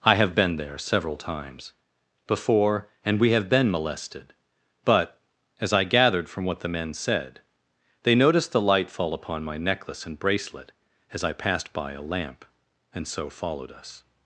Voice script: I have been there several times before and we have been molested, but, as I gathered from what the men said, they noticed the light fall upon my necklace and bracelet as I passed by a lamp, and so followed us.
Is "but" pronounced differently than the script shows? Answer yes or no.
no